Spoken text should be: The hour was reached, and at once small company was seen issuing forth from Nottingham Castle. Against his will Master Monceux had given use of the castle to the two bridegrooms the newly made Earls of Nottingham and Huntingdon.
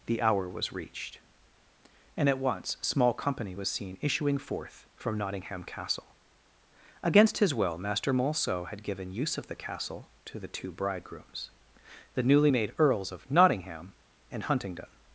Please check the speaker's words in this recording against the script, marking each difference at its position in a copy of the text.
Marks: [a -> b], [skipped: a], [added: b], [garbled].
The hour was reached, and at once small company was seen issuing forth from Nottingham Castle. Against his will Master Monceux had given use of the castle to the two bridegrooms the newly made Earls of Nottingham and Huntingdon.